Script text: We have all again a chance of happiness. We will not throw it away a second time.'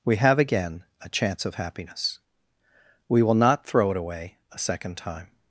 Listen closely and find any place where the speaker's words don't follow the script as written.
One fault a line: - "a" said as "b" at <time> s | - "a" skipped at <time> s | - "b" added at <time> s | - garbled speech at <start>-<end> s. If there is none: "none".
- "all" skipped at 0.4 s